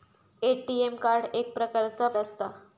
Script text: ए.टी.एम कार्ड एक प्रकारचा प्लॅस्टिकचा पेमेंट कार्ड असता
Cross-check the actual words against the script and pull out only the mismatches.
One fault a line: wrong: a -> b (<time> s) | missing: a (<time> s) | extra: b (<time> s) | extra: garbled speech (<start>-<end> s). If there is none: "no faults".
missing: प्लॅस्टिकचा पेमेंट कार्ड (2.1 s)